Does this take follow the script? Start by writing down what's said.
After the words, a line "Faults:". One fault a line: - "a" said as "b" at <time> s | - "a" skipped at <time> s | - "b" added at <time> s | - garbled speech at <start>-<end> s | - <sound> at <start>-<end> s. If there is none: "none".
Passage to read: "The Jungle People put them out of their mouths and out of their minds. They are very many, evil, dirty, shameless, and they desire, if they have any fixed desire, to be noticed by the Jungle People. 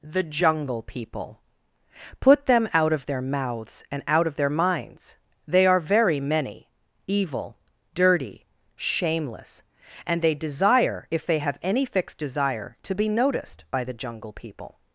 "The Jungle People put them out of their mouths and out of their minds. They are very many, evil, dirty, shameless, and they desire, if they have any fixed desire, to be noticed by the Jungle People.
Faults:
none